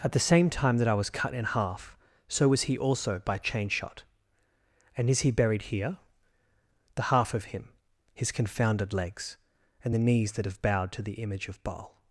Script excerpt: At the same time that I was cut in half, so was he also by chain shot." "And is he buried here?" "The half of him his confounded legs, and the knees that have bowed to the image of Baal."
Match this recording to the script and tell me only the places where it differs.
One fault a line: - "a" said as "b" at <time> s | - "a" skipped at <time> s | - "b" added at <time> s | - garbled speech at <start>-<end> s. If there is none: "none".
none